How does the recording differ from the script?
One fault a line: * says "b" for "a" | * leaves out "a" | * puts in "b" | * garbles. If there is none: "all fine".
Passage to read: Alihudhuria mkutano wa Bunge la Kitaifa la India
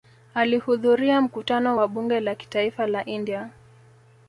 all fine